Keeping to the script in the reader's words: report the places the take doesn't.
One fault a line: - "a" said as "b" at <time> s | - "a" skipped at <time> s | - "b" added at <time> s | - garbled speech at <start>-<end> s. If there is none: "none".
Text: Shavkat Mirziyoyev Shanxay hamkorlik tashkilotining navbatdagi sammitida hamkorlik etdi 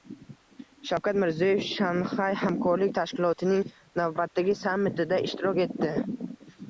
- "hamkorlik" said as "ishtirok" at 5.3 s